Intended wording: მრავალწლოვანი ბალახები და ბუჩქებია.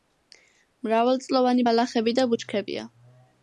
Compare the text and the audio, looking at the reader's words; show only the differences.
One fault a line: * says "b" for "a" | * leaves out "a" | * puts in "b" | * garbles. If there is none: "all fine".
all fine